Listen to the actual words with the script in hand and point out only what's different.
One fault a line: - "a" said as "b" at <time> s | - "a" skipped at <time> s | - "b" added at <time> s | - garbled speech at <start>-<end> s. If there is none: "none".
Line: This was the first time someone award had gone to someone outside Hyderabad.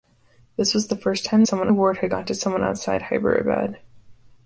none